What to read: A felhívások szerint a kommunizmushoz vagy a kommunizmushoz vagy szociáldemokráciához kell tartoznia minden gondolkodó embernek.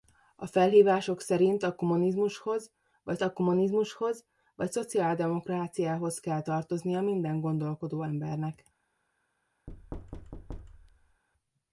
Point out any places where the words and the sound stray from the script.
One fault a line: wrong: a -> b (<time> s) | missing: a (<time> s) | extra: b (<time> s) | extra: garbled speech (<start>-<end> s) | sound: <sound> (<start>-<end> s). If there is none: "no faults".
sound: thud (9.7-11.2 s)